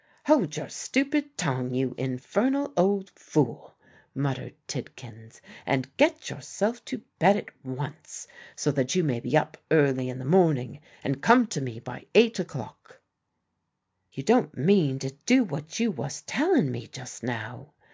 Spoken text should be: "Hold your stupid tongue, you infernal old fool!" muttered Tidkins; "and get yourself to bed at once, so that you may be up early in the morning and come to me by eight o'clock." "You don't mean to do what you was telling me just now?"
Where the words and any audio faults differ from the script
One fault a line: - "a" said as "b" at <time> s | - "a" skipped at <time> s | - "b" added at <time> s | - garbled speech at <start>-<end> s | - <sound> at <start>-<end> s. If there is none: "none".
none